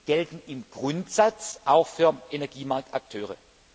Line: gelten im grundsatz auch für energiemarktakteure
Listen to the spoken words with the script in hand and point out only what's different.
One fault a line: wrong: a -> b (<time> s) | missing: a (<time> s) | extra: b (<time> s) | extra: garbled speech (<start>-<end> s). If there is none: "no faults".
no faults